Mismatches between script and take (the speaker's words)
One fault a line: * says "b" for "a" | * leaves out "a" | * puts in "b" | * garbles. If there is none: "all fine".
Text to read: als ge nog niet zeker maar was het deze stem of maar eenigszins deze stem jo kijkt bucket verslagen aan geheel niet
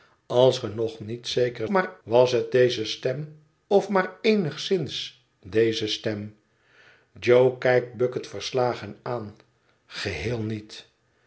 all fine